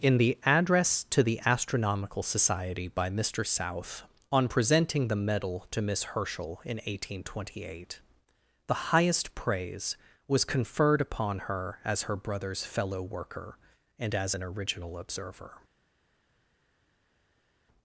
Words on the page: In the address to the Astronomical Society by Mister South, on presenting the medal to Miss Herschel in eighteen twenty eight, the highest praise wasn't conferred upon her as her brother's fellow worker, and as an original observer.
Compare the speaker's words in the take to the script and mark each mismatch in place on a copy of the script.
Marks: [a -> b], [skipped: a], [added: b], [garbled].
In the address to the Astronomical Society by Mister South, on presenting the medal to Miss Herschel in eighteen twenty eight, the highest praise [wasn't -> was] conferred upon her as her brother's fellow worker, and as an original observer.